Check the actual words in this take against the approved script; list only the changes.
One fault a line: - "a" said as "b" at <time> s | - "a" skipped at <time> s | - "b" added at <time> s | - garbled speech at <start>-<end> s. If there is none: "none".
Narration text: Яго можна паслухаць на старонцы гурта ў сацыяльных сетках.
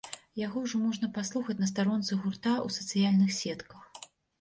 - "ўжо" added at 0.6 s